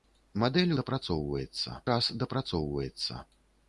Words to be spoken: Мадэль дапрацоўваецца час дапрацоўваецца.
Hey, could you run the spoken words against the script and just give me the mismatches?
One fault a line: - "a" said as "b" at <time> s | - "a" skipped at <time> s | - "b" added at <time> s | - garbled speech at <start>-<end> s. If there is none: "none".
none